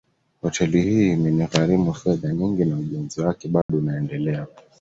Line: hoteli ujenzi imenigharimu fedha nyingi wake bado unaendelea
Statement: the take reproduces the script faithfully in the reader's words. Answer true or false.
false